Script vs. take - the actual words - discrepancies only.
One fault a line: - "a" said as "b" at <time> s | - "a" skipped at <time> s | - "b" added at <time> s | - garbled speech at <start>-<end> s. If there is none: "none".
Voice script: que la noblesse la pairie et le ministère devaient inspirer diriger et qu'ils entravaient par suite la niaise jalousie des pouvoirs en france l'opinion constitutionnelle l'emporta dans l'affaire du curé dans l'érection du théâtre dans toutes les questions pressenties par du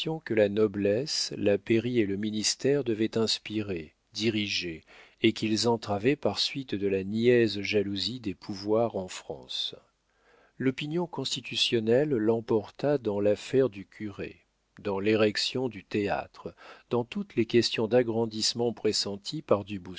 - "de" added at 6.7 s
- "d'agrandissement" added at 17.9 s